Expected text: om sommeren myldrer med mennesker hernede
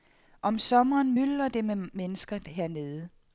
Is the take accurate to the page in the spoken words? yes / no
no